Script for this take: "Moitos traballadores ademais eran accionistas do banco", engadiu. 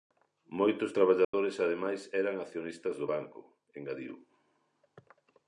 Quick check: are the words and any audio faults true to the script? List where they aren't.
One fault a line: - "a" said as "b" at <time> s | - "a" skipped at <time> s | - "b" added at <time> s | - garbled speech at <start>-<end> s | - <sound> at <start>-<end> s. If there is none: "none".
- dropout at 1.2-1.3 s